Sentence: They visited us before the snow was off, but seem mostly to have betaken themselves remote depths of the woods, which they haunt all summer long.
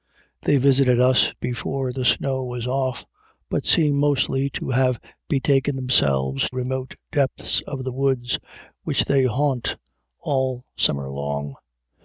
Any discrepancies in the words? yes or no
no